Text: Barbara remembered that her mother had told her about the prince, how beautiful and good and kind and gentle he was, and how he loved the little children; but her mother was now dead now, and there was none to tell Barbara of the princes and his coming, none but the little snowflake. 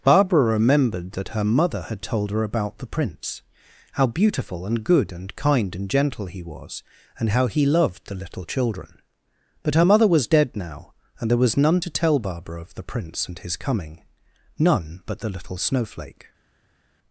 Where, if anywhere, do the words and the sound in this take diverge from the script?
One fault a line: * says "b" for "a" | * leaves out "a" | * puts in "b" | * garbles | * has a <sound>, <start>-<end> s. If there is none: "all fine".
* leaves out "now"
* says "prince" for "princes"